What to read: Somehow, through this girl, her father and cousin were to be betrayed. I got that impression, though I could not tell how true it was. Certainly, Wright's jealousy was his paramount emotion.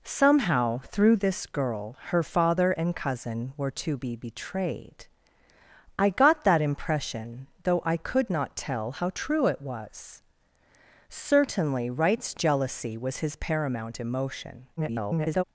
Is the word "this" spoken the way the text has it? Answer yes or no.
yes